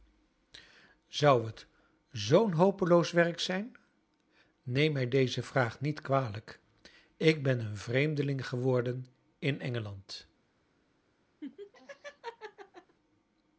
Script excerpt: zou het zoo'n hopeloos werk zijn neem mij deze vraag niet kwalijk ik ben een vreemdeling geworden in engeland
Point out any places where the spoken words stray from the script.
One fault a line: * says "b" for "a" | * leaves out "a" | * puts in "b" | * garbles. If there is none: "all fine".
all fine